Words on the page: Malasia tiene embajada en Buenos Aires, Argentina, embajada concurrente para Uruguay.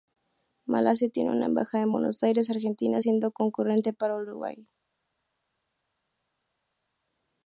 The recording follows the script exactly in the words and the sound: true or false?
false